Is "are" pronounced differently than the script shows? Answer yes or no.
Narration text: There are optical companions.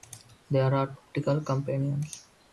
no